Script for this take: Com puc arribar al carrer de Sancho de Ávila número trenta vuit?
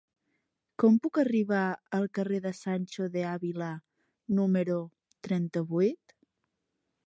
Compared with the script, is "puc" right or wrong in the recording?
right